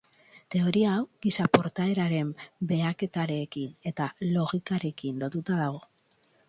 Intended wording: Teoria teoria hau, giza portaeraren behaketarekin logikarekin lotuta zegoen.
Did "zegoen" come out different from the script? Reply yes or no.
yes